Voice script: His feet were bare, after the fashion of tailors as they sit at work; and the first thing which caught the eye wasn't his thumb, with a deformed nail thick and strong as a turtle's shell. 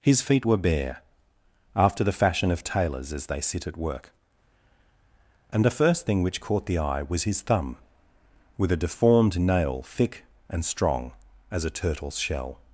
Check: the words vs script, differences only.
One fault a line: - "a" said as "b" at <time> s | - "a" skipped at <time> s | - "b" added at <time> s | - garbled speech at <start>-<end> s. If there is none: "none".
- "wasn't" said as "was" at 7.0 s